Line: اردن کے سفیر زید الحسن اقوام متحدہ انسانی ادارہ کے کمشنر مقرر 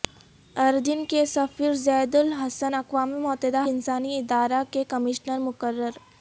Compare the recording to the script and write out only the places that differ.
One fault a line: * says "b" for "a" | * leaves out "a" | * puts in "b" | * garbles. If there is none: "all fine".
all fine